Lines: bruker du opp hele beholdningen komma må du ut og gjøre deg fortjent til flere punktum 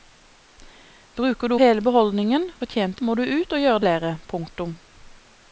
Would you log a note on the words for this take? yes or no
yes